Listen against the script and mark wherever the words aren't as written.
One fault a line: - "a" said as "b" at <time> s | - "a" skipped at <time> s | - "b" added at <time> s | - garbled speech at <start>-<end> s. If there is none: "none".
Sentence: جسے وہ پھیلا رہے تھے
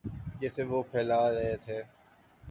none